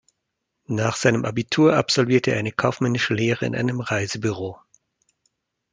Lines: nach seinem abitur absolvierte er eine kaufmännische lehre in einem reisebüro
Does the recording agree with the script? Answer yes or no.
yes